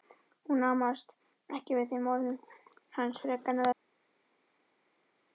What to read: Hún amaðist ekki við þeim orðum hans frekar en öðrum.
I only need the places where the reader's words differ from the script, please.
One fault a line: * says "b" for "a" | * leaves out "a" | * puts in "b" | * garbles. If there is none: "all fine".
all fine